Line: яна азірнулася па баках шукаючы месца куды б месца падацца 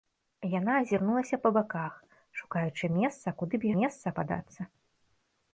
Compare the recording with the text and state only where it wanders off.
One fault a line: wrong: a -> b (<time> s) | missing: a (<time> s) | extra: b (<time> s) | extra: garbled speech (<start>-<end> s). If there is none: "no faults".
no faults